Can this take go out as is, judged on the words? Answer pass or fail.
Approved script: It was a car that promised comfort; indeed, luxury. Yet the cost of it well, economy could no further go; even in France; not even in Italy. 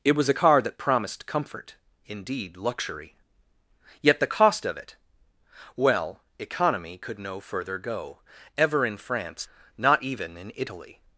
fail